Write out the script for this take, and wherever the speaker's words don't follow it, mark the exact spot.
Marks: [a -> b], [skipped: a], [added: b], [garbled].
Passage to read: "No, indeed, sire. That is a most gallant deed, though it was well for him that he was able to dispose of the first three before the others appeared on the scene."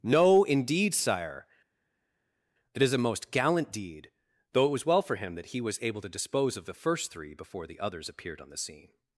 "No, indeed, sire. That is a most gallant deed, though it was well for him that he was able to dispose of the first three before the others appeared on the scene."